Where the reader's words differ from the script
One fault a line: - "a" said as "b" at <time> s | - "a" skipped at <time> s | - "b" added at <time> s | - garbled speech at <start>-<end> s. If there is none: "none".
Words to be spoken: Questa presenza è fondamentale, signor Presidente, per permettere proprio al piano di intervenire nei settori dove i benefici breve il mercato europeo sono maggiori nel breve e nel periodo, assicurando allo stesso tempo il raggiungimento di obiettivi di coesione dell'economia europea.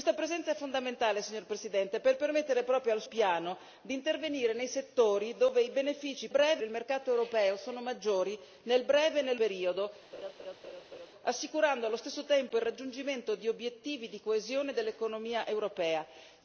none